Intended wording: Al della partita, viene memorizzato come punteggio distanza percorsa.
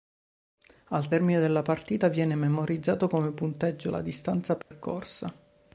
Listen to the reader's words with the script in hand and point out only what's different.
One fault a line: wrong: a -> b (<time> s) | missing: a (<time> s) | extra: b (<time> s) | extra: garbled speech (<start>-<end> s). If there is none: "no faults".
extra: termine (1.1 s)
extra: la (3.9 s)